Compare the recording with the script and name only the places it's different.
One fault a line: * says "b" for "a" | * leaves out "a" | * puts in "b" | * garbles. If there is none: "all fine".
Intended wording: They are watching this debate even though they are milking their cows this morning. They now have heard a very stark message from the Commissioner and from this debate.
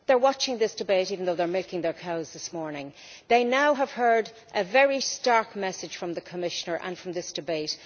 all fine